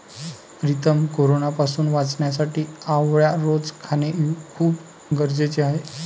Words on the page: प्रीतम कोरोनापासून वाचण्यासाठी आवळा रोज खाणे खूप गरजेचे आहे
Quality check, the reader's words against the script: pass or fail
pass